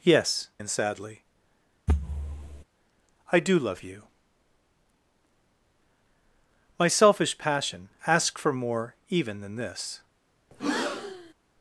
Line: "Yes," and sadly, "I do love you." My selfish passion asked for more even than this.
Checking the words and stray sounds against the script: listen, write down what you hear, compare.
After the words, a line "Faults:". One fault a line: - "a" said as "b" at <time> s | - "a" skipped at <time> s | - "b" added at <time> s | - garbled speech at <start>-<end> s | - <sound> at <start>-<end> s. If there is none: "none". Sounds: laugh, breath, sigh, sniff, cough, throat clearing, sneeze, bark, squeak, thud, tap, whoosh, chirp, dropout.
"Yes," and sadly, "I do love you." My selfish passion asked for more even than this.
Faults:
- thud at 1.9-2.6 s
- breath at 10.5-11.3 s